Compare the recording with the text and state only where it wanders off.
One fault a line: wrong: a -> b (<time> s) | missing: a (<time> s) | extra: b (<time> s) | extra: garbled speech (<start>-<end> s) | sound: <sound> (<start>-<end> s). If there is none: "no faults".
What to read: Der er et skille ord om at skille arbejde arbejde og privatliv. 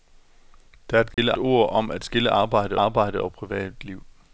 sound: dropout (1.1-1.2 s)